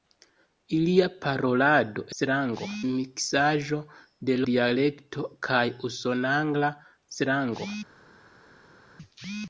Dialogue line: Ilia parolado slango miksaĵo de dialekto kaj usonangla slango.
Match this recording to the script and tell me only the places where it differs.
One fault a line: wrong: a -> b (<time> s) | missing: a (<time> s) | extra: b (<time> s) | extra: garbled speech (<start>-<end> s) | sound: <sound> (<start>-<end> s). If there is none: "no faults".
no faults